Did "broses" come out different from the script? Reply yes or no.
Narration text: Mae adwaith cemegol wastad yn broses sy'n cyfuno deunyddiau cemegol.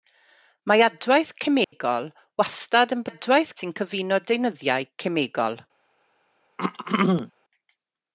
yes